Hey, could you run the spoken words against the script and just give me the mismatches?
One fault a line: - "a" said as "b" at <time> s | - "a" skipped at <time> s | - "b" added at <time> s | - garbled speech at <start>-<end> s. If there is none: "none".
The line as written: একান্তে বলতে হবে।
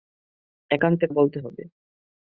none